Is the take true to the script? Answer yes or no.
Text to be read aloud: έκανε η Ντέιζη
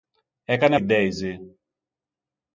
yes